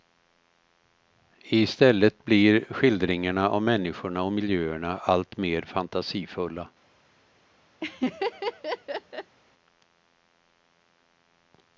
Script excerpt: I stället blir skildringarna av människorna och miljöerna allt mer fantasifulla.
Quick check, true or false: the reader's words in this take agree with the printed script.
true